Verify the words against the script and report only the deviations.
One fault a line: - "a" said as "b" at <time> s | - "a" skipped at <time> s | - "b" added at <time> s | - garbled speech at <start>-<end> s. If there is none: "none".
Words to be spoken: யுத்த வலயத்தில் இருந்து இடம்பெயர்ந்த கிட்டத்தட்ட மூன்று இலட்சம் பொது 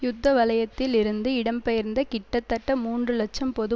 none